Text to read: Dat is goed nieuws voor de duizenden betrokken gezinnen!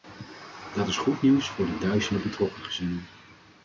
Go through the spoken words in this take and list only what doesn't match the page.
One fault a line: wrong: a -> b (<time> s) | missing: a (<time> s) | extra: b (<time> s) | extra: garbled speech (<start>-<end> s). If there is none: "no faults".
no faults